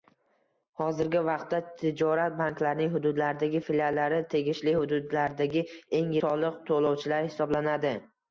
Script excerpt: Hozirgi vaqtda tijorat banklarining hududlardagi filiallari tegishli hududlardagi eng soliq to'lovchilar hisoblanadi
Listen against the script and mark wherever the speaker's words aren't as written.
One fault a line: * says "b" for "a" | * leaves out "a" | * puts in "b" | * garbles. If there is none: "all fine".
all fine